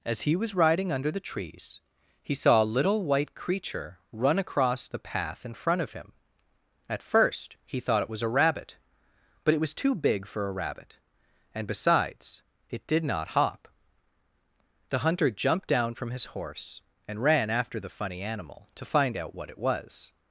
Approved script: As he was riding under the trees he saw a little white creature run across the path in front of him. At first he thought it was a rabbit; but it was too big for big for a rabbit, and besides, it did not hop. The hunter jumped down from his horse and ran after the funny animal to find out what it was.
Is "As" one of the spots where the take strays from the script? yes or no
no